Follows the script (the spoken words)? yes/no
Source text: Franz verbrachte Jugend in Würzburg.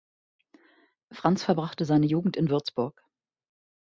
no